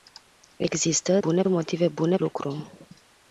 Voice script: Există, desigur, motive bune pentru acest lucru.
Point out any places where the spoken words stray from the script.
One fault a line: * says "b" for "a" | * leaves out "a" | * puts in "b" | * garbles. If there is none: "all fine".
* says "bune" for "desigur"
* leaves out "pentru acest"